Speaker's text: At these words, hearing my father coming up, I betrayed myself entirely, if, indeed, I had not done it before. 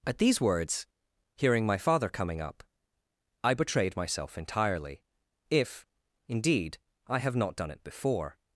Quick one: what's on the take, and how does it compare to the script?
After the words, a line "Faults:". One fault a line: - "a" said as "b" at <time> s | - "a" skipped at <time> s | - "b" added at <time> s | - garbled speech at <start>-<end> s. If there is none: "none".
At these words, hearing my father coming up, I betrayed myself entirely, if, indeed, I have not done it before.
Faults:
- "had" said as "have" at 7.2 s